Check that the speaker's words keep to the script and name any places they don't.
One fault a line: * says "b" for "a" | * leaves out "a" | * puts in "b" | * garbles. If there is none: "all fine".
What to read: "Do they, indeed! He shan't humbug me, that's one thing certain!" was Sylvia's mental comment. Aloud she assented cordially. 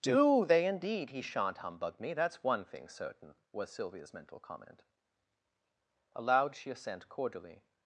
* says "assent" for "assented"